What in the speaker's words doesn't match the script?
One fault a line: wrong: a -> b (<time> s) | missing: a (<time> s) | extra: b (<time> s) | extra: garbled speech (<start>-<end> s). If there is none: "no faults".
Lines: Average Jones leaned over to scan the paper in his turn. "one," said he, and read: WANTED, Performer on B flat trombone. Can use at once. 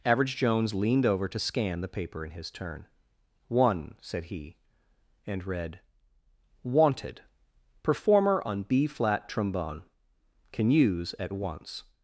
no faults